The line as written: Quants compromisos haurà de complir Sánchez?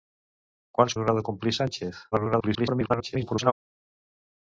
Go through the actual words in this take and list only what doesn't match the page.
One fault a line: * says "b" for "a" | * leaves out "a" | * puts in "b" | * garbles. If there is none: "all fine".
* leaves out "compromisos"
* garbles